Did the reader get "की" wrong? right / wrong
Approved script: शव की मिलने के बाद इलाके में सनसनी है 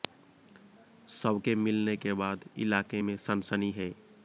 wrong